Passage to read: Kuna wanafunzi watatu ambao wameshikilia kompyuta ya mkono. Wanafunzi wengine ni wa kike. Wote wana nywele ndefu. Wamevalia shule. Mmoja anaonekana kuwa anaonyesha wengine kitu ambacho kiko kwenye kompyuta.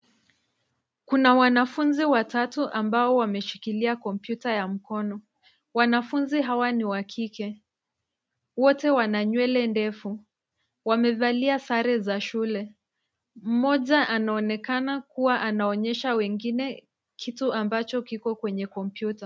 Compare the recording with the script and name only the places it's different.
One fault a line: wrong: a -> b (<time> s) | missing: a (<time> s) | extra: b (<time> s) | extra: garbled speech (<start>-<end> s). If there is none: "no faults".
wrong: wengine -> hawa (6.4 s)
extra: sare za (11.6 s)